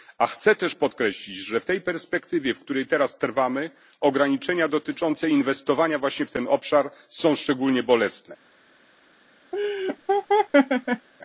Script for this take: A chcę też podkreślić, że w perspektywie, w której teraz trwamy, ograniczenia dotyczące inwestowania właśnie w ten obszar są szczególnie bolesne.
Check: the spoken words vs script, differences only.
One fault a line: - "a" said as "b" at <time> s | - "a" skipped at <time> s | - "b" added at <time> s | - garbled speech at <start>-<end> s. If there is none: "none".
- "tej" added at 1.6 s